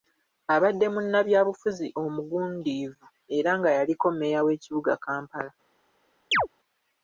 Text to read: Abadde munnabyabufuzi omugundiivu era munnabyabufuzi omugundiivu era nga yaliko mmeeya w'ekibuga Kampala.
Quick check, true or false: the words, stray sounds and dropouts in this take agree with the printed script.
false